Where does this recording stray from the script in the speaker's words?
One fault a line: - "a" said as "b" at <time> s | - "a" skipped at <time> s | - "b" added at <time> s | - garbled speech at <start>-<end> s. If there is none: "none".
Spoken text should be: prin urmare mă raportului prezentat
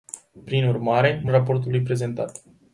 none